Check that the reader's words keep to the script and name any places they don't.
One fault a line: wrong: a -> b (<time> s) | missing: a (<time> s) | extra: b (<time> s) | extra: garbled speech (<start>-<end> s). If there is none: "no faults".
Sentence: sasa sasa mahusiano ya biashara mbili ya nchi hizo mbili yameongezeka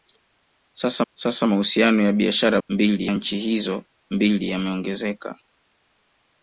no faults